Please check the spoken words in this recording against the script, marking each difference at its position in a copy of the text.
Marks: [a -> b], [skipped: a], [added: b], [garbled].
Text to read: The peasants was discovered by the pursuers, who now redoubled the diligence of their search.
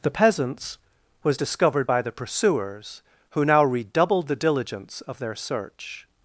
The peasants was discovered by the pursuers, who now redoubled the diligence of their search.